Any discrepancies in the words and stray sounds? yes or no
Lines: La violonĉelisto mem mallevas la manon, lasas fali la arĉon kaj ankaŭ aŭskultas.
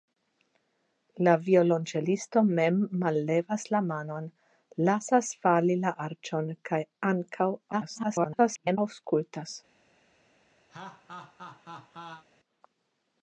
yes